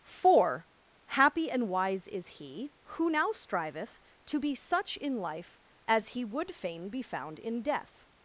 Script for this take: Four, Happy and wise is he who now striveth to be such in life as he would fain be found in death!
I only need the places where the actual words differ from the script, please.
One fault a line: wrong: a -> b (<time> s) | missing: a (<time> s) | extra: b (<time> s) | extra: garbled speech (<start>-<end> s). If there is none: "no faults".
no faults